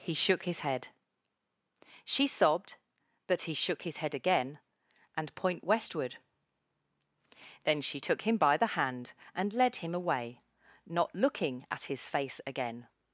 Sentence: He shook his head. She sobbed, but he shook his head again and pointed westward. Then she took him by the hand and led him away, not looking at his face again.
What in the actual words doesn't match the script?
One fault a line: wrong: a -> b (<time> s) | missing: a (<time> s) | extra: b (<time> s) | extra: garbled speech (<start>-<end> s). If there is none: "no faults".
wrong: pointed -> point (5.3 s)